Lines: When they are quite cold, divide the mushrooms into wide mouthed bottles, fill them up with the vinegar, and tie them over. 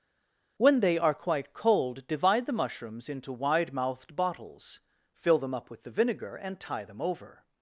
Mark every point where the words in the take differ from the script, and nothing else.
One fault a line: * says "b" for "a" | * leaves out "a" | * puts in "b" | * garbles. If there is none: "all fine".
all fine